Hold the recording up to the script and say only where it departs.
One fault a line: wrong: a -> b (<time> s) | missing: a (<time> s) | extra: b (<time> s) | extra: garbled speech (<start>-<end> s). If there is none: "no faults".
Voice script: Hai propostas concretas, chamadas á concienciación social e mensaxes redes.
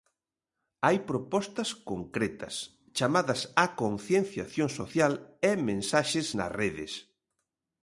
extra: nas (6.4 s)